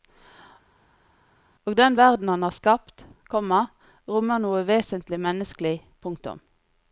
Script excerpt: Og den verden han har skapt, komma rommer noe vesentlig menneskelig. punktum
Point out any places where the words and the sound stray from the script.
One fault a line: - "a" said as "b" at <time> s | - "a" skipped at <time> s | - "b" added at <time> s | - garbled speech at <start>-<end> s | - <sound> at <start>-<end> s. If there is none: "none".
none